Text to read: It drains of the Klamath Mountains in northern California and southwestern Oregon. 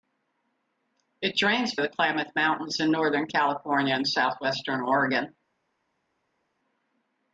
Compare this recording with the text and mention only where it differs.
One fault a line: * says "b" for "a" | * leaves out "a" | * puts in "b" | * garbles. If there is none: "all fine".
all fine